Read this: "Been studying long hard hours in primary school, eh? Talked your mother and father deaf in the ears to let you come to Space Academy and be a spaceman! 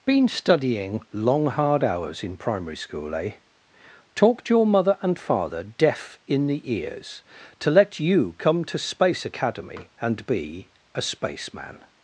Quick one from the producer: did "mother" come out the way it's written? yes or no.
yes